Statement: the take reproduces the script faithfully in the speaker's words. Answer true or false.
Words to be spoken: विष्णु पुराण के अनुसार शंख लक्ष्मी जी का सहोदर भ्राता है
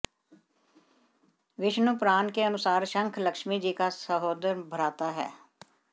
true